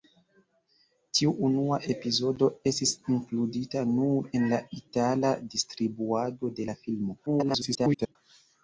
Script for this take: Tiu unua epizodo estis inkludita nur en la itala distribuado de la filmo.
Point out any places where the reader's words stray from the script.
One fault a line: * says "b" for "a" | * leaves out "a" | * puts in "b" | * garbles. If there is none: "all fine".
* garbles